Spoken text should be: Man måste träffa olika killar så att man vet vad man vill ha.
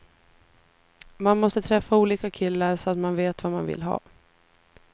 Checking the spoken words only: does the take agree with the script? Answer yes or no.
yes